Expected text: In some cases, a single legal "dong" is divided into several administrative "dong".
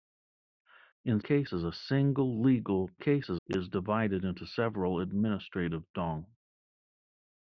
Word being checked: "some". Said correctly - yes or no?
no